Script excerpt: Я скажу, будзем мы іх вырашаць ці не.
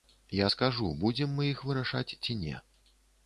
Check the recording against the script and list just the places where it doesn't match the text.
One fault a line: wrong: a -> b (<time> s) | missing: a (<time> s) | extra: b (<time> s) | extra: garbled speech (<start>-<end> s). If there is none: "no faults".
no faults